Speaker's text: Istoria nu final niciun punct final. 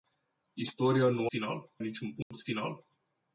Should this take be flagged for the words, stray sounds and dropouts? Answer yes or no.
yes